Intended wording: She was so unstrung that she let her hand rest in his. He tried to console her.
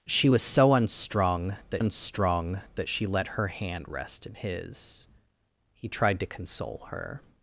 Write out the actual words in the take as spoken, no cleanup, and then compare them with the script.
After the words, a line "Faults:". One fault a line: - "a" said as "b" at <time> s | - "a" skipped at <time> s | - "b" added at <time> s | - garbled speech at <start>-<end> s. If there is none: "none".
She was so unstrung that unstrung that she let her hand rest in his. He tried to console her.
Faults:
- "unstrung that" added at 1.8 s